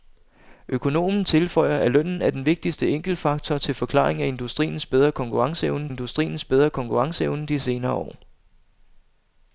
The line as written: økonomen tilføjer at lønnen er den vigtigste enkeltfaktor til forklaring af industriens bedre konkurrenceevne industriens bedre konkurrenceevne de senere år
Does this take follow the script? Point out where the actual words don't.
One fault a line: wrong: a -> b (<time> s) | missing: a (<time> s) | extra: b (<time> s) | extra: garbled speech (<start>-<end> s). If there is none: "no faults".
no faults